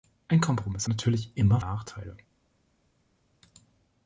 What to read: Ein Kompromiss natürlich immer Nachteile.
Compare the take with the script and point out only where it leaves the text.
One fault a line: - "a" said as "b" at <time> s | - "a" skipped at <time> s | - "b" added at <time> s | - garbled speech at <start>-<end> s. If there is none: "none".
none